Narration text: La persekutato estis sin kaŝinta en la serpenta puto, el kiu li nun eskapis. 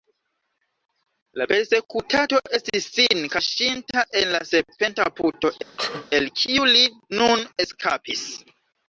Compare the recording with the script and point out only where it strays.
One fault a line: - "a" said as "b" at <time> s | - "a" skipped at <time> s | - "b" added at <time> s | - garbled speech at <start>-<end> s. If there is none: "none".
none